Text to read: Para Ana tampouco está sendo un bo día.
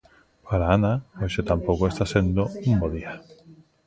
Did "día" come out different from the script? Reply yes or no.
no